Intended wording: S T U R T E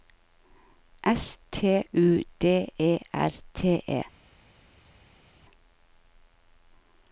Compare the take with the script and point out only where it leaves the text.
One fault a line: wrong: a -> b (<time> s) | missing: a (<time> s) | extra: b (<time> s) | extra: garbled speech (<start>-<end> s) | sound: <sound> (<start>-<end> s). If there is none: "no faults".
extra: D E (2.4 s)